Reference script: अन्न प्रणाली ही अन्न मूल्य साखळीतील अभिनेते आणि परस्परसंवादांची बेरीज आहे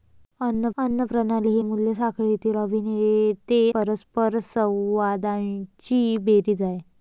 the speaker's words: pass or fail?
fail